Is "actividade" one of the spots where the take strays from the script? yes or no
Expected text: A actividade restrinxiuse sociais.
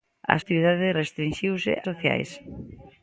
no